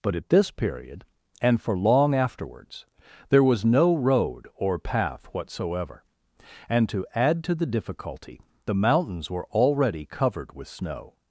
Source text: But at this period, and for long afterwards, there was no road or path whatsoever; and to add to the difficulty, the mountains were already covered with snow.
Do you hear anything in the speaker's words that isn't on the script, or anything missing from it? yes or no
no